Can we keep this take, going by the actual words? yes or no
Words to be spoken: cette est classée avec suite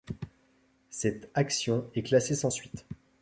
no